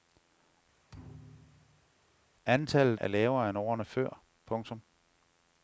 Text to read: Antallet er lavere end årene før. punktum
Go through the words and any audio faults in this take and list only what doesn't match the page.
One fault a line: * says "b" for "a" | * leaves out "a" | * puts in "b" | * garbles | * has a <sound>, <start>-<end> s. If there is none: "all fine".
* has a thud, 0.9-1.9 s